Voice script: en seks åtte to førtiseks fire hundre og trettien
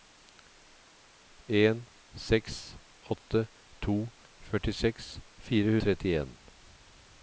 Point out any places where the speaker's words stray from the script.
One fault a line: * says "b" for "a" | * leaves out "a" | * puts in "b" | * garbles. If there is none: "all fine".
* leaves out "hundre"